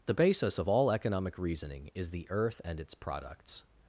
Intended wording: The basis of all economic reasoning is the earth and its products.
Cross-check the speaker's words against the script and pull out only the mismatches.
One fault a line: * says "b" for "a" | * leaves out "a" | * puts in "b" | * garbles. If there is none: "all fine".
all fine